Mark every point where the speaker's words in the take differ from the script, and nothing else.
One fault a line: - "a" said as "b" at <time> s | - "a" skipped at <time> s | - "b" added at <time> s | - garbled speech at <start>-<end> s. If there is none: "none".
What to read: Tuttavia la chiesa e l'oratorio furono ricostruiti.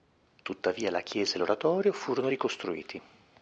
none